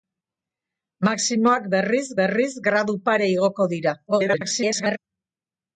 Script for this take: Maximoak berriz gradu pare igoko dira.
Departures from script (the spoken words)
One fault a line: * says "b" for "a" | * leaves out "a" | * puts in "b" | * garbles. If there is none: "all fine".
* puts in "berriz"
* garbles